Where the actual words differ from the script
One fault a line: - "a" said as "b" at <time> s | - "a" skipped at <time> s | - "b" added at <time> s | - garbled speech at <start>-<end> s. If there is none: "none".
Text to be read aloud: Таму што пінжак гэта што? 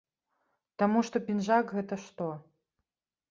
none